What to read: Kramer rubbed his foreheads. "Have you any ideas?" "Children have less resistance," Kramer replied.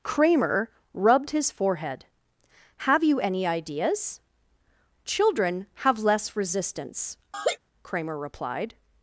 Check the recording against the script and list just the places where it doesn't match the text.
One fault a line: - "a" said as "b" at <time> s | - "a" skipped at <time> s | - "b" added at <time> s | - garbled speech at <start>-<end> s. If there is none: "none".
- "foreheads" said as "forehead" at 1.5 s